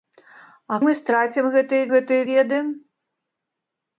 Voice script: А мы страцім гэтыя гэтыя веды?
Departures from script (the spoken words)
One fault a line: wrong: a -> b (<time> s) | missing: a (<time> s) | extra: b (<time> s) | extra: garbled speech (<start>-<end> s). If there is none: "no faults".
no faults